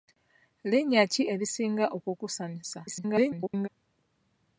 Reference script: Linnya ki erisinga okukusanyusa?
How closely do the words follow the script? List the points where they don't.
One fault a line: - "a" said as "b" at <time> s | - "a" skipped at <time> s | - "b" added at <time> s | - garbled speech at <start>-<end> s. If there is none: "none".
- garbled speech at 2.9-3.7 s